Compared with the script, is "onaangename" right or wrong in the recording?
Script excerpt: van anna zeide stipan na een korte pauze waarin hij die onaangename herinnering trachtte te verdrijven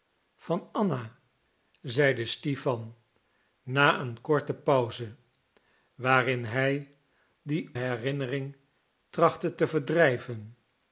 wrong